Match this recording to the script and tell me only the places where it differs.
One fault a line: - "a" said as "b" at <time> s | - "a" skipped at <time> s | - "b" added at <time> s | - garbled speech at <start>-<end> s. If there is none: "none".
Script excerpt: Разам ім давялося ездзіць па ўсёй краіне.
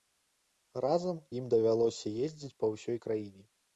none